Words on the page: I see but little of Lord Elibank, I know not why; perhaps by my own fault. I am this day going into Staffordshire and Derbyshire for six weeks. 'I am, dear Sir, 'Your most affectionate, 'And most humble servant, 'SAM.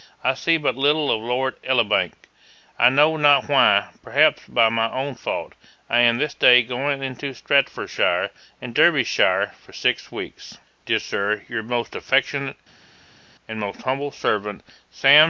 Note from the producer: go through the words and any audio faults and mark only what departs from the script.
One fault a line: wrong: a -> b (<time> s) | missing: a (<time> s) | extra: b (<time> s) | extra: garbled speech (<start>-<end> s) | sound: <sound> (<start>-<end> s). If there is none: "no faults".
missing: I am (10.6 s)